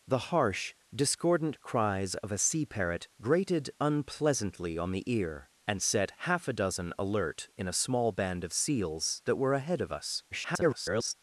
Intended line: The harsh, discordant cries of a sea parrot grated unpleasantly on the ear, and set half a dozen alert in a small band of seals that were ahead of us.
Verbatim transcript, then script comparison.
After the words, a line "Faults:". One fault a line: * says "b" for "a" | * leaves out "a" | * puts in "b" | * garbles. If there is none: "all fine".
The harsh, discordant cries of a sea parrot grated unpleasantly on the ear, and set half a dozen alert in a small band of seals that were ahead of us. [garbled]
Faults:
* garbles